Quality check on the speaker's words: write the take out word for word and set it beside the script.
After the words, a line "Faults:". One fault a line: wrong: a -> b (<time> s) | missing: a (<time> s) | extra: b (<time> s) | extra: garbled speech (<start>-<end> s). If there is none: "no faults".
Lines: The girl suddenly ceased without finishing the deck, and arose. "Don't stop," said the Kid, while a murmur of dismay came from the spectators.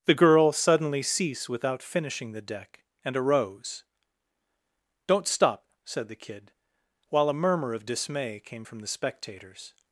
The girl suddenly cease without finishing the deck, and arose. "Don't stop," said the Kid, while a murmur of dismay came from the spectators.
Faults:
wrong: ceased -> cease (1.0 s)